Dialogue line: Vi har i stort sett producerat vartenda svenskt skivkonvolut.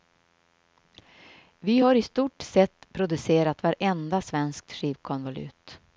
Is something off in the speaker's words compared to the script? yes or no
no